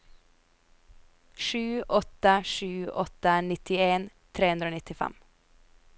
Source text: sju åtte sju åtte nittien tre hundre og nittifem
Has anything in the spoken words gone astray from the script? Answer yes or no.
no